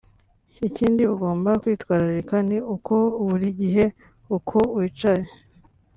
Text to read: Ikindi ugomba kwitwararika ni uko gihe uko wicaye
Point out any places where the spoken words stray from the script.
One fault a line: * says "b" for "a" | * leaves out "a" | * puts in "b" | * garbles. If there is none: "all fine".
* puts in "buri"